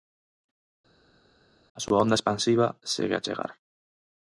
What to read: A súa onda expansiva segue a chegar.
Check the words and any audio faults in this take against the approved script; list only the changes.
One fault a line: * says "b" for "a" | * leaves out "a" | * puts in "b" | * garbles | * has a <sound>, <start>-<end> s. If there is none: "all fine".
all fine